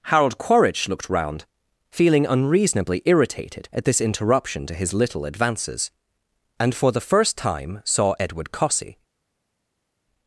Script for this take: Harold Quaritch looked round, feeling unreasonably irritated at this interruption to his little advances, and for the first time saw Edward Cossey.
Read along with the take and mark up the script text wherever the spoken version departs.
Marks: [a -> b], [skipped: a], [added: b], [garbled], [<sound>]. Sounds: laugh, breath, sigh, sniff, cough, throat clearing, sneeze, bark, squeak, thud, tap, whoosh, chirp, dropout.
Harold Quaritch looked round, feeling unreasonably irritated at this interruption to his little advances, and for the first time saw Edward Cossey.